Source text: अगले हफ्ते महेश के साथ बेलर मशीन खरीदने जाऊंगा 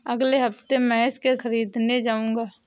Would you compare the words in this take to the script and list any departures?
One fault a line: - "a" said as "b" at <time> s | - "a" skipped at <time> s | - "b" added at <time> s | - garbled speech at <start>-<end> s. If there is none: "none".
- "साथ बेलर मशीन" skipped at 1.4 s